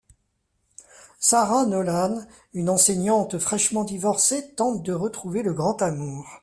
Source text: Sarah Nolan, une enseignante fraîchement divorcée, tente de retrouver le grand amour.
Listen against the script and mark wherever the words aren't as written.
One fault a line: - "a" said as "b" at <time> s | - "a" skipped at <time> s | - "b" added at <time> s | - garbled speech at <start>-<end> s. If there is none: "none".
none